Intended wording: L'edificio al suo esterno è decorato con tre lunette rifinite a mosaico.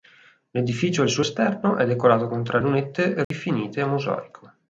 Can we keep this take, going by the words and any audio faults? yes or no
no